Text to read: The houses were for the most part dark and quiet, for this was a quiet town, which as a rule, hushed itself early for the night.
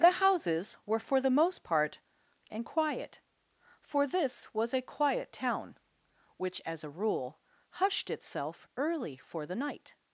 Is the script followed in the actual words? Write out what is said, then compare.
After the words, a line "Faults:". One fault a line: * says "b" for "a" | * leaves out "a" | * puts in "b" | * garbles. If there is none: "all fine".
The houses were for the most part and quiet, for this was a quiet town, which as a rule, hushed itself early for the night.
Faults:
* leaves out "dark"